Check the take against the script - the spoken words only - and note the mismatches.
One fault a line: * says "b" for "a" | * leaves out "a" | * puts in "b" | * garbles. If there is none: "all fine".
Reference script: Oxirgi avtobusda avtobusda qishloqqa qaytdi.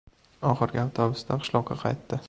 * leaves out "avtobusda"